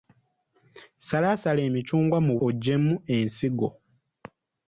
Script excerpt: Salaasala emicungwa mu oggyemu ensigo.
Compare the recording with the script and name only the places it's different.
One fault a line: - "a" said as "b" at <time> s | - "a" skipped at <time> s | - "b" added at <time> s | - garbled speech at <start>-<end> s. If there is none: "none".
none